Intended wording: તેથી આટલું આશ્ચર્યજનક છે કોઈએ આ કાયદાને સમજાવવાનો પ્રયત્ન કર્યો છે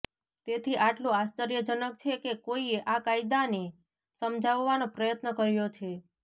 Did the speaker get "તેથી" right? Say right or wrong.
right